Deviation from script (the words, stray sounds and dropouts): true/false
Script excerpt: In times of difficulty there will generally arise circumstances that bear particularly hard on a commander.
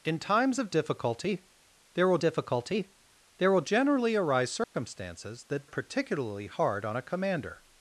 true